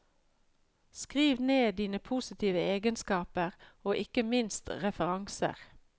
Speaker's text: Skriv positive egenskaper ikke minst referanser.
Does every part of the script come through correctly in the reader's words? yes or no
no